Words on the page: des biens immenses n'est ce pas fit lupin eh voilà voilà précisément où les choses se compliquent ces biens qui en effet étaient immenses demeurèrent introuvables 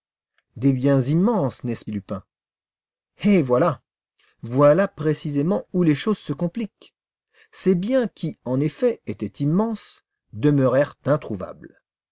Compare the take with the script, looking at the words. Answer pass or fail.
fail